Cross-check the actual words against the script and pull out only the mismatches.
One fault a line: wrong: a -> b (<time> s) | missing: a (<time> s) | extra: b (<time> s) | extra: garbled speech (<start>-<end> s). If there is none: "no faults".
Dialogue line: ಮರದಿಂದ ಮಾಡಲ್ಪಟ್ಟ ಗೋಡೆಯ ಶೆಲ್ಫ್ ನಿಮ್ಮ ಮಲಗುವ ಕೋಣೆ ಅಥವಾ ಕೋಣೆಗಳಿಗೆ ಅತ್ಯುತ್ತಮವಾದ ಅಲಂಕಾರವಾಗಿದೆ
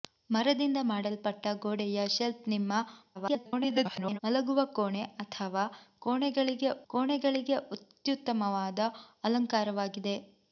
extra: garbled speech (3.1-4.2 s)
extra: ಕೋಣೆಗಳಿಗೆ (6.9 s)